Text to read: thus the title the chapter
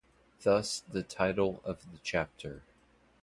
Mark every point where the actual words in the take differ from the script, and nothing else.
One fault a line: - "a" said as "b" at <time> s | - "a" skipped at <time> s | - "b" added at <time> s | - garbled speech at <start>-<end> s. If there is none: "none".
- "of" added at 1.7 s